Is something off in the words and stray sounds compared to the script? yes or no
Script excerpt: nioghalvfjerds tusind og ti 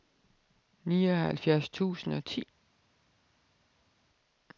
no